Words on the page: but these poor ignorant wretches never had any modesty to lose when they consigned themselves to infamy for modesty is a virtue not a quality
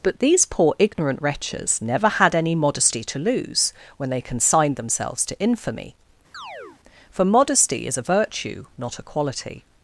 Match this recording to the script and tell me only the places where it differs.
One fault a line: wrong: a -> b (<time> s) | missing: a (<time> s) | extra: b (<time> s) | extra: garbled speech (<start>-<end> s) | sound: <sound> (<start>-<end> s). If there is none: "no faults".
sound: chirp (6.3-6.8 s)